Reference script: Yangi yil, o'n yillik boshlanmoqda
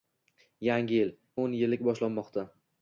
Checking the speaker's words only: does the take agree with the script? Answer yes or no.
yes